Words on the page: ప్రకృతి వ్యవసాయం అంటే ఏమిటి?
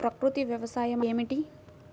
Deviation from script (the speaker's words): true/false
true